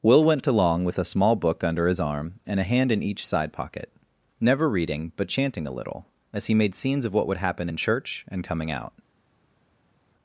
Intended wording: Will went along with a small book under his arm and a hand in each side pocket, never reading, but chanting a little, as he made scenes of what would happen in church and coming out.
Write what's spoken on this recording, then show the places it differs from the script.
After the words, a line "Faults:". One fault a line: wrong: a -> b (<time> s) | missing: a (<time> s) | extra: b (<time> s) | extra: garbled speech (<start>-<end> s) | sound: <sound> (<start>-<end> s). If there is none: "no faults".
Will went along with a small book under his arm and a hand in each side pocket, never reading, but chanting a little, as he made scenes of what would happen in church and coming out.
Faults:
no faults